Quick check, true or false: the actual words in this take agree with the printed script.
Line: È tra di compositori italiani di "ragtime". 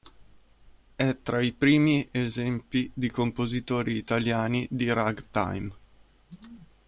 false